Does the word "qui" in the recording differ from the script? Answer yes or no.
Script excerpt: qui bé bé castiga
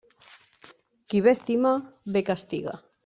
no